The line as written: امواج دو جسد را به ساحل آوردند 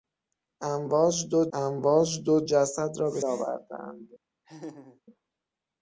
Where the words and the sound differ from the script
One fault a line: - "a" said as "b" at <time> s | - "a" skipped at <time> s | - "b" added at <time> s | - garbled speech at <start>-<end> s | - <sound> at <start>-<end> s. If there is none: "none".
- "امواج دو" added at 1.5 s
- "ساحل" skipped at 3.2 s
- laugh at 4.4-5.0 s